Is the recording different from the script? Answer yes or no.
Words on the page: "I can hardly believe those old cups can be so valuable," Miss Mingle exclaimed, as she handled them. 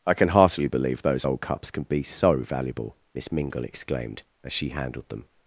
yes